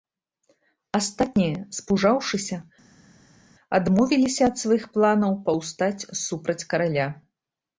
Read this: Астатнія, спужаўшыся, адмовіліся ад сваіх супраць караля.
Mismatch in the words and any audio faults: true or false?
true